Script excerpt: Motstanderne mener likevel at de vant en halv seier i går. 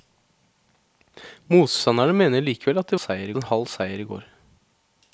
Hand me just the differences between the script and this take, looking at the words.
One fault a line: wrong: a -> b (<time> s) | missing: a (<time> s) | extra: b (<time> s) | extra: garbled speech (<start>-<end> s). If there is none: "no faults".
wrong: vant -> seier (3.0 s)